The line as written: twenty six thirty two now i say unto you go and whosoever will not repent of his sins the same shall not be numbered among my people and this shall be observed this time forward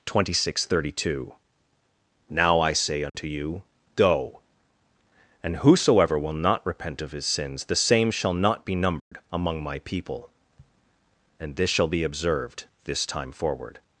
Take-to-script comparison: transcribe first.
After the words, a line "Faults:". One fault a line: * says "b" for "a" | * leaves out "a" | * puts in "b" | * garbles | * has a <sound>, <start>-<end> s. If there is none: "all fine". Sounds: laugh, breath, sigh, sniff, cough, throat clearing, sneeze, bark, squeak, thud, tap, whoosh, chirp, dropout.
twenty six thirty two now i say unto you go and whosoever will not repent of his sins the same shall not be numbered among my people and this shall be observed this time forward
Faults:
* has a dropout, 3.1-3.1 s
* has a dropout, 9.0-9.1 s